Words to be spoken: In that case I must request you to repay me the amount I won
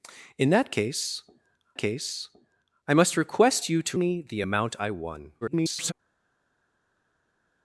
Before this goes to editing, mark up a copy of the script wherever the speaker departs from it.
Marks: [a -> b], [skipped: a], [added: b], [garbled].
In that case [added: case] I must request you to [skipped: repay] me the amount I won [garbled]